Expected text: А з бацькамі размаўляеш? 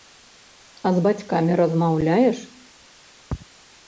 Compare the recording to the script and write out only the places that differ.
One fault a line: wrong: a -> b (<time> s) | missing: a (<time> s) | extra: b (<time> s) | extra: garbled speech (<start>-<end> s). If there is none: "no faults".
no faults